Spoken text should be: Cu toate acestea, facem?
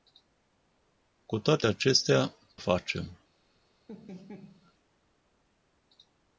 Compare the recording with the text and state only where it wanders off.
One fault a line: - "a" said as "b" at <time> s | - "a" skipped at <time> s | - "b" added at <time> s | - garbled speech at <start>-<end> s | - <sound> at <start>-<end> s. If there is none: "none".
- laugh at 3.9-4.7 s